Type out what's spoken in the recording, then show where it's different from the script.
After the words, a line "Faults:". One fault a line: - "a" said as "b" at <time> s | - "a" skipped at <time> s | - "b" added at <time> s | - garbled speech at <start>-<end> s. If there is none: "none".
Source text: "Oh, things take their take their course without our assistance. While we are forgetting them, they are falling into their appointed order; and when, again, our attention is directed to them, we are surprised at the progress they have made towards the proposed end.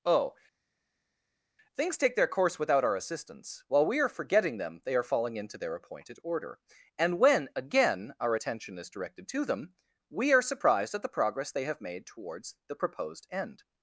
"Oh, things take their course without our assistance. While we are forgetting them, they are falling into their appointed order; and when, again, our attention is directed to them, we are surprised at the progress they have made towards the proposed end.
Faults:
- "take their" skipped at 2.3 s